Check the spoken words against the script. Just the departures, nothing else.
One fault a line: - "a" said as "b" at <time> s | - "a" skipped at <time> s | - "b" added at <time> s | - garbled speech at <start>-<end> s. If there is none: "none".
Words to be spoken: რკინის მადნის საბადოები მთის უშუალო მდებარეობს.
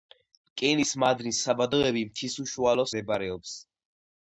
none